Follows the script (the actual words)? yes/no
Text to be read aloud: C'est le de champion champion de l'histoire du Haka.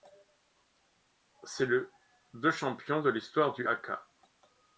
no